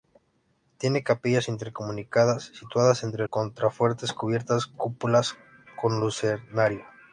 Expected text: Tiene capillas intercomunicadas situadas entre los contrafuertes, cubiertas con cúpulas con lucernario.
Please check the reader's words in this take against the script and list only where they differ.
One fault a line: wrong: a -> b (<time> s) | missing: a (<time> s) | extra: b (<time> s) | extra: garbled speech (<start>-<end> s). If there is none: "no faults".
missing: los (3.3 s)
missing: con (4.7 s)